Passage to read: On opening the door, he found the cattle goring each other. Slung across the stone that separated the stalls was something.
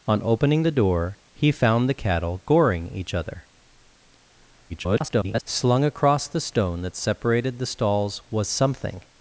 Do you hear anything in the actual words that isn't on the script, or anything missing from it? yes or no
yes